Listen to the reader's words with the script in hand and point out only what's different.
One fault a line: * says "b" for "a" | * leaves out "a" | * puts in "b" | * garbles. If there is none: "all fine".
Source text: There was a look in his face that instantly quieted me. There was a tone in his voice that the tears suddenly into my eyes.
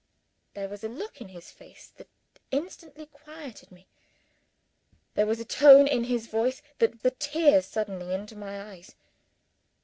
all fine